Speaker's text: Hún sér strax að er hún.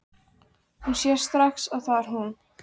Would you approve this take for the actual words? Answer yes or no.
no